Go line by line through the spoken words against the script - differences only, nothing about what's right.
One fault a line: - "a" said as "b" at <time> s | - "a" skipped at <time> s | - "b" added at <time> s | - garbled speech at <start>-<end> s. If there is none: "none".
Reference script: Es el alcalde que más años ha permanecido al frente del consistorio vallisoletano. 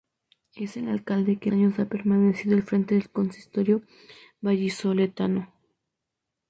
- "más" skipped at 1.5 s